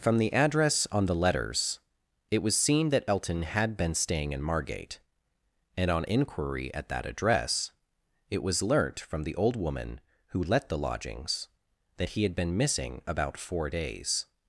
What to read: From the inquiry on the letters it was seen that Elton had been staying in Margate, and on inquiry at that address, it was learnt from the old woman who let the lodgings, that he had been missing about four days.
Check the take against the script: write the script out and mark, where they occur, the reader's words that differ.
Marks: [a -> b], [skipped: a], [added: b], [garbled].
From the [inquiry -> address] on the letters it was seen that Elton had been staying in Margate, and on inquiry at that address, it was learnt from the old woman who let the lodgings, that he had been missing about four days.